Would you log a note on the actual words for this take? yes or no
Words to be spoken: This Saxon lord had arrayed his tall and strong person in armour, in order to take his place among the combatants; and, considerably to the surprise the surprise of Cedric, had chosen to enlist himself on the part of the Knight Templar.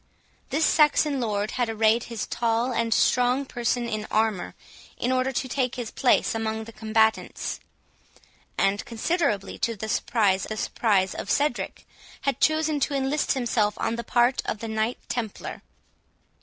no